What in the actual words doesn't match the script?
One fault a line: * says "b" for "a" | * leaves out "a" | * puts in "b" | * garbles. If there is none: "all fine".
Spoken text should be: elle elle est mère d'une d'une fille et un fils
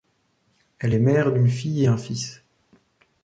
* leaves out "elle"
* leaves out "d'une"